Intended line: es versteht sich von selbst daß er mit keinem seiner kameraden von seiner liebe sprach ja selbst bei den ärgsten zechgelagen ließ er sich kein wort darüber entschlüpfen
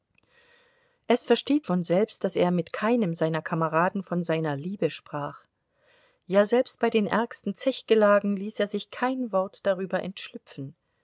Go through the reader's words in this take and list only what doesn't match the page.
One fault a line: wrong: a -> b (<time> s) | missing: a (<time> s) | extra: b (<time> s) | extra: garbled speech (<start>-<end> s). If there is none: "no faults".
missing: sich (1.7 s)